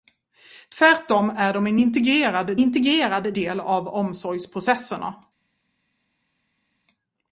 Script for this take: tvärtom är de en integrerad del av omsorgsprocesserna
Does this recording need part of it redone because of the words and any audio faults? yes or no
yes